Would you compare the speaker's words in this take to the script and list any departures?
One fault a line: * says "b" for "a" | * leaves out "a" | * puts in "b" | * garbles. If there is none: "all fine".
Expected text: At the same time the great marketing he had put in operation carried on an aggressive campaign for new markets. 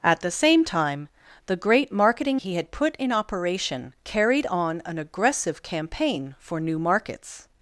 all fine